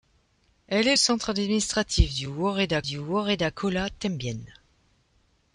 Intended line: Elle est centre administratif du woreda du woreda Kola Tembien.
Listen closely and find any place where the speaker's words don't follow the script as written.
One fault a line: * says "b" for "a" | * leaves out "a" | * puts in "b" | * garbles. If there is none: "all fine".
all fine